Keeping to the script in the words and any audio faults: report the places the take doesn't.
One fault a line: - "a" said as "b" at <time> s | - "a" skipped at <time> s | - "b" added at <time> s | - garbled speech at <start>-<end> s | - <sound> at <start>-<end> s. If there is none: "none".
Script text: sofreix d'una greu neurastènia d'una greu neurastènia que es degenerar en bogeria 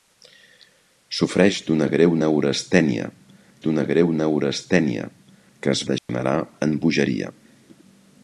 - dropout at 6.0-6.1 s